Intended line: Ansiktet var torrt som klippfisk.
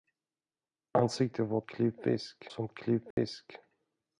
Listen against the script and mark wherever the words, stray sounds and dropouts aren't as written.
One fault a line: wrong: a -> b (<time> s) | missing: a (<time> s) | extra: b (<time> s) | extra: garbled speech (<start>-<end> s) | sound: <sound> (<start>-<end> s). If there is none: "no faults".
wrong: torrt -> klippfisk (1.6 s)
sound: dropout (3.1-3.2 s)